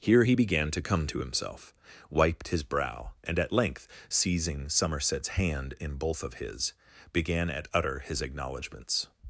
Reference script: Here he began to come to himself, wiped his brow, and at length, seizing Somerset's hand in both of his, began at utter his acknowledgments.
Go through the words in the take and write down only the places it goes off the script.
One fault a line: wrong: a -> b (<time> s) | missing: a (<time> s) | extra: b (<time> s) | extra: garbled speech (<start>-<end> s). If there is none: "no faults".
no faults